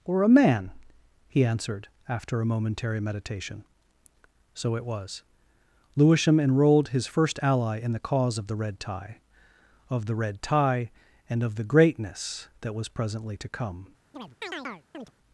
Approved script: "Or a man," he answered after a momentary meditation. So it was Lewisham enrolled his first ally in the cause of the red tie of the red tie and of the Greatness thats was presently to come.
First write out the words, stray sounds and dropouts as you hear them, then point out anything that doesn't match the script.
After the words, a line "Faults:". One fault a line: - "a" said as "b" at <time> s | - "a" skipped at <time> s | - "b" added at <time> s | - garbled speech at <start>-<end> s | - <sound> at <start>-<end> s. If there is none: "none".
"Or a man," he answered after a momentary meditation. So it was Lewisham enrolled his first ally in the cause of the red tie of the red tie and of the Greatness that was presently to come.
Faults:
- "thats" said as "that" at 12.6 s
- chirp at 14.1-15.1 s